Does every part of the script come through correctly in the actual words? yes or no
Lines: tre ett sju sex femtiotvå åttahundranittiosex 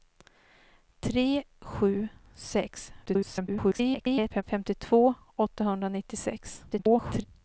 no